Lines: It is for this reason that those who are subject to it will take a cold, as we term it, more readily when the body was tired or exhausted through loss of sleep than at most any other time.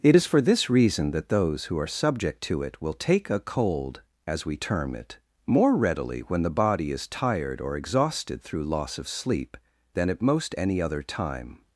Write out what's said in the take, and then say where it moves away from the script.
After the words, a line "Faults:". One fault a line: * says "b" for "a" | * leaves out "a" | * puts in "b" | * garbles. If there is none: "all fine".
It is for this reason that those who are subject to it will take a cold, as we term it, more readily when the body is tired or exhausted through loss of sleep than at most any other time.
Faults:
* says "is" for "was"